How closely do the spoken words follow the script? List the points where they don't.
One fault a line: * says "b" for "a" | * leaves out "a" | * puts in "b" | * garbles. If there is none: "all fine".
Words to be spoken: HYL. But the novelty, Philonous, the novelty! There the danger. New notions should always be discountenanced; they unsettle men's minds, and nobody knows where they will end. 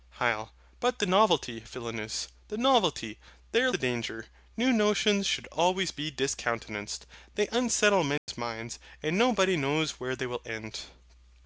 all fine